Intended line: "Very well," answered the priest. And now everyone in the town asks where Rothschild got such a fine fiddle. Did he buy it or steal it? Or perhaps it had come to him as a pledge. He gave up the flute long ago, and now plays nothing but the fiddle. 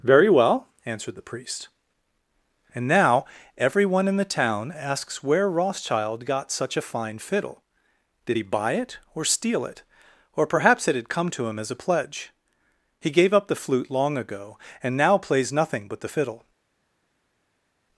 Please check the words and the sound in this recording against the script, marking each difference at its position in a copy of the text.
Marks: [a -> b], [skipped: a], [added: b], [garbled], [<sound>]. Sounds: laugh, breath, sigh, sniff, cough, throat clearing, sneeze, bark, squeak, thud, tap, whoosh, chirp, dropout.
"Very well," answered the priest. And now everyone in the town asks where Rothschild got such a fine fiddle. Did he buy it or steal it? Or perhaps it had come to him as a pledge. He gave up the flute long ago, and now plays nothing but the fiddle.